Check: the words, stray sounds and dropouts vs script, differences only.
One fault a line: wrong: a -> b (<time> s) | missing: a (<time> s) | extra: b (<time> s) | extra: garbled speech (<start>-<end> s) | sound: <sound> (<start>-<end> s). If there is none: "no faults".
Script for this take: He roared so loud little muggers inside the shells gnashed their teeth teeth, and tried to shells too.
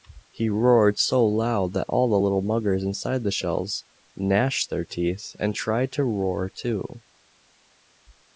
extra: that all the (1.7 s)
missing: teeth (5.4 s)
wrong: shells -> roar (6.1 s)